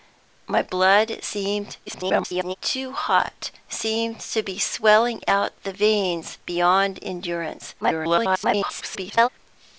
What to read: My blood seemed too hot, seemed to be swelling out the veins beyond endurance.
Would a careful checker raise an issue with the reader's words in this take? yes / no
yes